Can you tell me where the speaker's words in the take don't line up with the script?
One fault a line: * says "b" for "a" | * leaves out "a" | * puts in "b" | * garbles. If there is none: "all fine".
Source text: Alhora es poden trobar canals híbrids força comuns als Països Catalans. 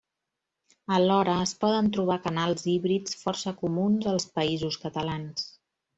all fine